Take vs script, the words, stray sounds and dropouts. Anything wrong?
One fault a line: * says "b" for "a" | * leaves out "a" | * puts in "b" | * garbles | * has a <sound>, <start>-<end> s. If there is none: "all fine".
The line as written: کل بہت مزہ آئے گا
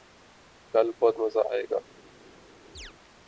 * has a chirp, 2.8-2.9 s